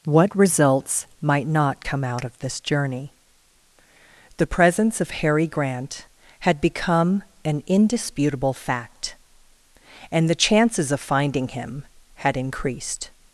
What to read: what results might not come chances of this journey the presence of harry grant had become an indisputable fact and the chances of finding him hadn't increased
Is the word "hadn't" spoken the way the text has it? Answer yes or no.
no